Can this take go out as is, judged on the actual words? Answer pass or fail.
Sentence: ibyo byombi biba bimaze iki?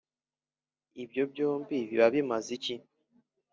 pass